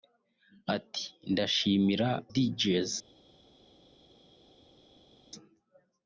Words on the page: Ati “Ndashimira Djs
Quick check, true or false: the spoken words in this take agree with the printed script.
true